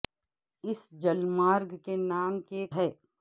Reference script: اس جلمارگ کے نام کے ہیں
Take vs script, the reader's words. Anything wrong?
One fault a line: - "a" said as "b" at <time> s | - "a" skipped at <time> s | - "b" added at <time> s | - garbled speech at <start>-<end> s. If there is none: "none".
none